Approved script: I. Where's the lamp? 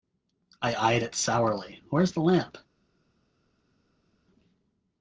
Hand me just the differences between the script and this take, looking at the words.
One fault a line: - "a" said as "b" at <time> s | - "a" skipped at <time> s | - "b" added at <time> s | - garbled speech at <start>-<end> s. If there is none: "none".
- "eyed it sourly" added at 0.7 s